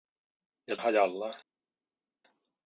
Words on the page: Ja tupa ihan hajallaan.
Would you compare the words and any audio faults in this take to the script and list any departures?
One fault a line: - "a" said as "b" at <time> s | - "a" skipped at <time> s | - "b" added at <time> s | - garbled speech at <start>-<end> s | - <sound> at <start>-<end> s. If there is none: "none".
- "tupa ihan" skipped at 0.8 s